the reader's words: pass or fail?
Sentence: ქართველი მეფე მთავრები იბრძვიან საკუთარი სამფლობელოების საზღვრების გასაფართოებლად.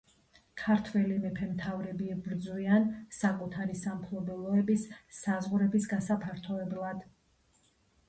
pass